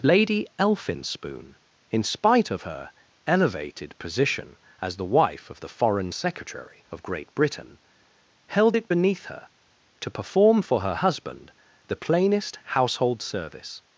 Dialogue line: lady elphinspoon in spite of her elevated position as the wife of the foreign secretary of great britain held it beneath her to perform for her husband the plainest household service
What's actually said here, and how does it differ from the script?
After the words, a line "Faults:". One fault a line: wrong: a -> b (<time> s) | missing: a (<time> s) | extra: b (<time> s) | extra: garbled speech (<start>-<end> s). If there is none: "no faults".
lady elphinspoon in spite of her elevated position as the wife of the foreign secretary of great britain held it beneath her to perform for her husband the plainest household service
Faults:
no faults